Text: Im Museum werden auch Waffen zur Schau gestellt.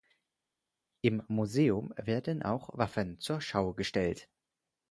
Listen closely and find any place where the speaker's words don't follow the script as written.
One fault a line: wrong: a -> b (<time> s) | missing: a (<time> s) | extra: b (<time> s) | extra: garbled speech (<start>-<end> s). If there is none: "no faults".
no faults